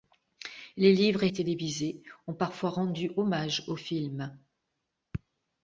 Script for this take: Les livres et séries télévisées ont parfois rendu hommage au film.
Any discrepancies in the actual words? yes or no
yes